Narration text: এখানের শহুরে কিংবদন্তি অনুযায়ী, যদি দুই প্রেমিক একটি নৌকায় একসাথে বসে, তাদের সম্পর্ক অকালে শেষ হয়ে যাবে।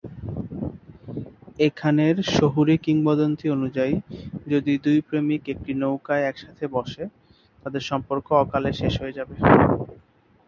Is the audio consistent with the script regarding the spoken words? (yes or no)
yes